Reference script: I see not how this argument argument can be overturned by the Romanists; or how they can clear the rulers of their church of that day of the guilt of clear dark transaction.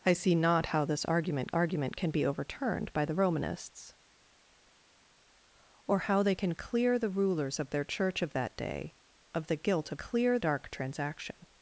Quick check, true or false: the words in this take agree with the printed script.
true